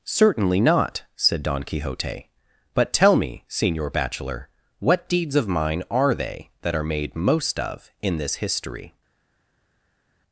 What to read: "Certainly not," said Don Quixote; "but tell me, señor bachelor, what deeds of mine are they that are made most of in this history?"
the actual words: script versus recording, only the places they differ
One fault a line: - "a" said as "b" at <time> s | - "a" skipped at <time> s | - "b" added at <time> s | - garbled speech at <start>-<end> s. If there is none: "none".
none